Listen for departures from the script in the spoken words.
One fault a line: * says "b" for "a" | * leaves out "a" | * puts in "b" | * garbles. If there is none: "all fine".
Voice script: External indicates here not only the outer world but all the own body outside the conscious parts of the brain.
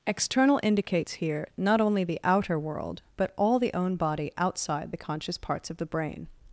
all fine